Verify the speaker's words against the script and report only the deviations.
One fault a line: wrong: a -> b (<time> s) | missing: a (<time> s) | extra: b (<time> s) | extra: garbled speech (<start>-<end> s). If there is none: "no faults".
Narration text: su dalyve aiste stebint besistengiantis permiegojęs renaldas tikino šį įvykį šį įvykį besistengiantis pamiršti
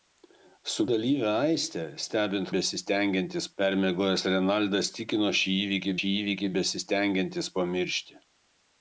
no faults